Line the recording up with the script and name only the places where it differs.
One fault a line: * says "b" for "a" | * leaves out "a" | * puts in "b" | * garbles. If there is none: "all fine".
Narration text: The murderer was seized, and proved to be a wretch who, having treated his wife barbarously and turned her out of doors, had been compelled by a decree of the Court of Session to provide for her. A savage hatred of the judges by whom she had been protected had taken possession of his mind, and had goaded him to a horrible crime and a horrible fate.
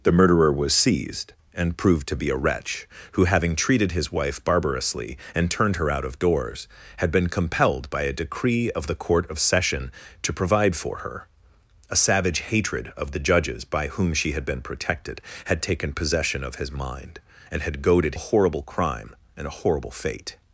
* leaves out "him to"